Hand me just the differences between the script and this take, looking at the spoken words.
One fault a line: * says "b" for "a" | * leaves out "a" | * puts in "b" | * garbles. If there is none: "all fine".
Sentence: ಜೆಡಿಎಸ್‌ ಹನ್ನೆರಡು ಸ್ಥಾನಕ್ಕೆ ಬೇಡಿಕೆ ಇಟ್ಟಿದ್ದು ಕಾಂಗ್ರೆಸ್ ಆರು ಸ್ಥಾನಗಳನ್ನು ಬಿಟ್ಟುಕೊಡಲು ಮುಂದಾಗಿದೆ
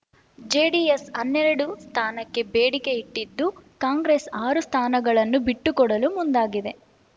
all fine